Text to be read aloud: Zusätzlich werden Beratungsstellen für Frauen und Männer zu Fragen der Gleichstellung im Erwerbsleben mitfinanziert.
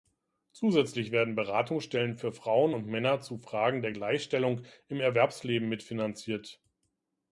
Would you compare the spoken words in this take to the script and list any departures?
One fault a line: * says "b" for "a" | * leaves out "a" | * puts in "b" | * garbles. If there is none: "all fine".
all fine